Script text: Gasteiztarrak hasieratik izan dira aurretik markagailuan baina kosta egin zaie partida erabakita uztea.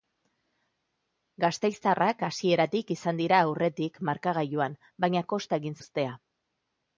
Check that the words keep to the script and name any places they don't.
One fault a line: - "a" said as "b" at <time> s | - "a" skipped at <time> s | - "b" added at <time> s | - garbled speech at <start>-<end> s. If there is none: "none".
- "zaie partida erabakita" skipped at 5.8 s